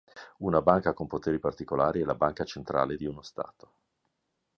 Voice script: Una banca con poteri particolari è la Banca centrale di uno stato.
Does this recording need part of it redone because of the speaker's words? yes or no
no